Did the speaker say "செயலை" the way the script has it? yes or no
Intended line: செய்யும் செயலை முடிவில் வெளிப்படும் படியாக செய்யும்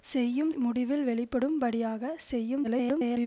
no